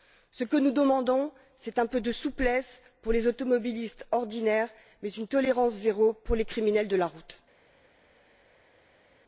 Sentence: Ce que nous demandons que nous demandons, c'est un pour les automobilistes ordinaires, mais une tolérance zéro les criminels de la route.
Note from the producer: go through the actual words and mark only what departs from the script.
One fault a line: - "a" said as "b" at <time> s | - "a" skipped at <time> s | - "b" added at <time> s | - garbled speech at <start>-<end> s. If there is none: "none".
- "que nous demandons c'est un" said as "c'est un peu de souplesse" at 1.6 s
- "pour" added at 6.1 s